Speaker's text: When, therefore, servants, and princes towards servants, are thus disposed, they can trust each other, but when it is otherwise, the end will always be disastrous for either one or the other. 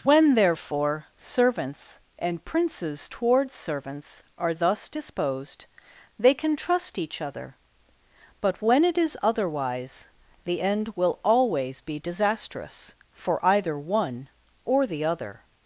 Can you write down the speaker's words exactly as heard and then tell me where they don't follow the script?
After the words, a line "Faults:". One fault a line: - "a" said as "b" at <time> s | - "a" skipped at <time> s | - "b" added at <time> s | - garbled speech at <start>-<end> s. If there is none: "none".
When, therefore, servants, and princes towards servants, are thus disposed, they can trust each other, but when it is otherwise, the end will always be disastrous for either one or the other.
Faults:
none